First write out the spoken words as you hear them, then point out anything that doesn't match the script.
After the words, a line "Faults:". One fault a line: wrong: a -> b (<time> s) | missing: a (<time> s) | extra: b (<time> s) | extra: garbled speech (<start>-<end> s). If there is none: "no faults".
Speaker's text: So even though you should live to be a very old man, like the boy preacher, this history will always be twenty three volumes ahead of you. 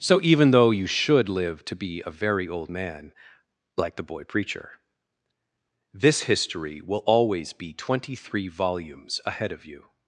So even though you should live to be a very old man, like the boy preacher, this history will always be twenty three volumes ahead of you.
Faults:
no faults